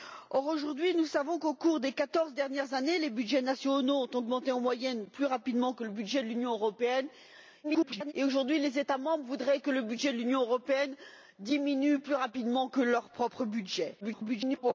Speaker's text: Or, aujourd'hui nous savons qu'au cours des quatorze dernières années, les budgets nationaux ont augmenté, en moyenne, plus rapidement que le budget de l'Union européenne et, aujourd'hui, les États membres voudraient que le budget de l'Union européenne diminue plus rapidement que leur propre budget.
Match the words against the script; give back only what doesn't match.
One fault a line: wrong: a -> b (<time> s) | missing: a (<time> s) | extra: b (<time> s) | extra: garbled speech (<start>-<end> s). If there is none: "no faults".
extra: garbled speech (7.6-8.1 s)
extra: garbled speech (14.0-14.7 s)